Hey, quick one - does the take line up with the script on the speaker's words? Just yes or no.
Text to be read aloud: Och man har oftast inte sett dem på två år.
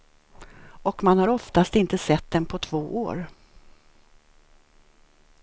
yes